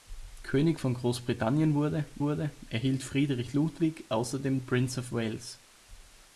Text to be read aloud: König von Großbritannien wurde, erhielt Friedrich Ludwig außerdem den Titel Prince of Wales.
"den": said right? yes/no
no